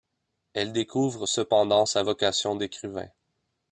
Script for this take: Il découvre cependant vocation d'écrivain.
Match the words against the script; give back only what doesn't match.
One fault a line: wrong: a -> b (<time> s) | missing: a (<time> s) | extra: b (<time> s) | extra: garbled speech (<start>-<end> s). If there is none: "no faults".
wrong: Il -> Elle (0.5 s)
extra: sa (1.8 s)